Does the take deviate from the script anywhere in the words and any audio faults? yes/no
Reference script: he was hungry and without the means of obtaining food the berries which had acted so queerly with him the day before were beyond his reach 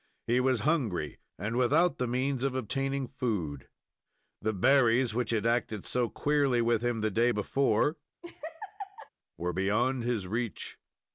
yes